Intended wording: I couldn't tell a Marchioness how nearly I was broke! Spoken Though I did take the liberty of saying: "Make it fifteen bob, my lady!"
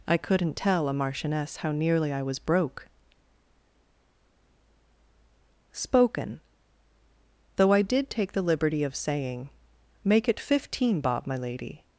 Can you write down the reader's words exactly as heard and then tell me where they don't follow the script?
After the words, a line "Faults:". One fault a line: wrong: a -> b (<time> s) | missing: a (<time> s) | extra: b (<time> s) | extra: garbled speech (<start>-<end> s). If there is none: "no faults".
I couldn't tell a Marchioness how nearly I was broke! Spoken Though I did take the liberty of saying: "Make it fifteen bob, my lady!"
Faults:
no faults